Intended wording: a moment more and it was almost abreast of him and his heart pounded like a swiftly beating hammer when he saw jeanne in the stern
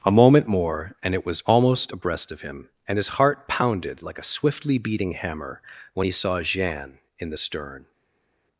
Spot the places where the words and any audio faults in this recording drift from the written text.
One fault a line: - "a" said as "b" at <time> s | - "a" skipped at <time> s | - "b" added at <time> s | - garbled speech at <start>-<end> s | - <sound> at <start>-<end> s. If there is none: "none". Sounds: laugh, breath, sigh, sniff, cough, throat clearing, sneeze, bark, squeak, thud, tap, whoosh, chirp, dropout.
none